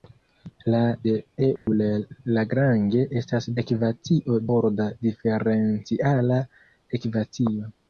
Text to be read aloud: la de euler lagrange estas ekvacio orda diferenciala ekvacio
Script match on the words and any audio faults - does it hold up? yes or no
no